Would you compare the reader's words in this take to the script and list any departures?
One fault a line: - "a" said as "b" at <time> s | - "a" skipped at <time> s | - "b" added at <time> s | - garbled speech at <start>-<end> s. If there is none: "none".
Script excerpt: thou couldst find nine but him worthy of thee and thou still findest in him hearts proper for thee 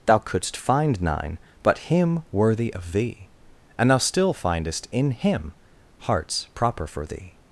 none